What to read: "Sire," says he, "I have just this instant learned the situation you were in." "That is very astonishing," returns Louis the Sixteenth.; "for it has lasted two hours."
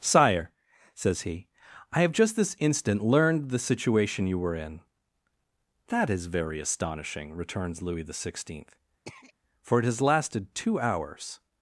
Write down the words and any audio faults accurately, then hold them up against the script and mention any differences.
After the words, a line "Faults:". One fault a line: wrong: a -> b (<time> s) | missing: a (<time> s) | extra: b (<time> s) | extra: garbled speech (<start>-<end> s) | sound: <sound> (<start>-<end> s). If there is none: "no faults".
"Sire," says he, "I have just this instant learned the situation you were in." "That is very astonishing," returns Louis the Sixteenth.; "for it has lasted two hours."
Faults:
sound: throat clearing (9.1-9.3 s)